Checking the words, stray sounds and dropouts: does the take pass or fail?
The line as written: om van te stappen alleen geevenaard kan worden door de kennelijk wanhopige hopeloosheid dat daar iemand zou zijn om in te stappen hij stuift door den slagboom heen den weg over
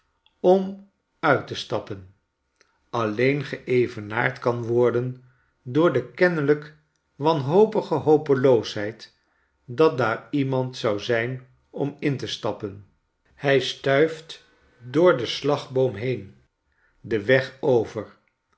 fail